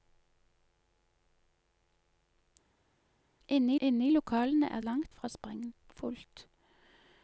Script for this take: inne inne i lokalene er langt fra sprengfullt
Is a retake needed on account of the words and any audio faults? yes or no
no